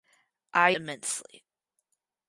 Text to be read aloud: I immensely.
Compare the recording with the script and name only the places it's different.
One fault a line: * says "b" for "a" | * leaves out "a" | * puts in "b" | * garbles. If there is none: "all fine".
all fine